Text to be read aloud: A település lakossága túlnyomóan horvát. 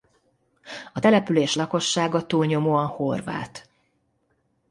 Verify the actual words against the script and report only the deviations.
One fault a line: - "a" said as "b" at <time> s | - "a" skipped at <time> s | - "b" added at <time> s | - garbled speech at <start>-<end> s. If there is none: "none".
none